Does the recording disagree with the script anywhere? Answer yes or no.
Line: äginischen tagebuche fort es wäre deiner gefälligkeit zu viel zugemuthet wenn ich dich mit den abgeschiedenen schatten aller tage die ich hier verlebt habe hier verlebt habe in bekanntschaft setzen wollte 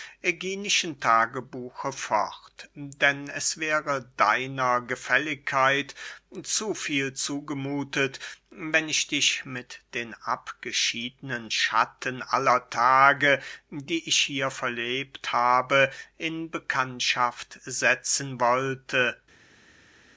yes